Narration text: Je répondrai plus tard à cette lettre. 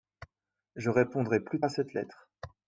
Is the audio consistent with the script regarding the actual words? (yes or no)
no